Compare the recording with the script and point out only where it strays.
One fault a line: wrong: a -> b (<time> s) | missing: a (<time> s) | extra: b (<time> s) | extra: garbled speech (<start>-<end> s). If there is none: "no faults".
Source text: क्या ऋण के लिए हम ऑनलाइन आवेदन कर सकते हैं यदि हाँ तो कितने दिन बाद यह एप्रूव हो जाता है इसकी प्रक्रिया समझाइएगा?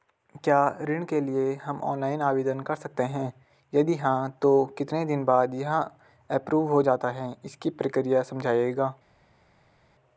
no faults